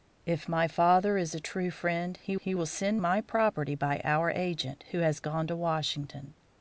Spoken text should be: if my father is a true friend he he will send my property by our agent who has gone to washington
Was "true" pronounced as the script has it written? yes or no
yes